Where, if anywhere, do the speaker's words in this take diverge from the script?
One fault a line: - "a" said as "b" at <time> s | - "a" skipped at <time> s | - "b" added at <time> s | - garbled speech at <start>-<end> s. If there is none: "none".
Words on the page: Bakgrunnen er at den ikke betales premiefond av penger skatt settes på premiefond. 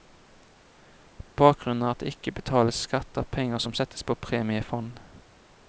- "den" said as "det" at 2.0 s
- "premiefond" said as "skatt" at 2.9 s
- "skatt" said as "som" at 3.6 s